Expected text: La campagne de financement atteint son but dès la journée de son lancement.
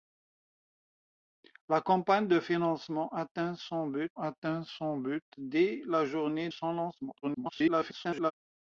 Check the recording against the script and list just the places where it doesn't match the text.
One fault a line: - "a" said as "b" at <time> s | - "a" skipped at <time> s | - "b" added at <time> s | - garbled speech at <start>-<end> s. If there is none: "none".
- "atteint son but" added at 4.1 s
- "de" skipped at 6.5 s
- garbled speech at 7.2-8.3 s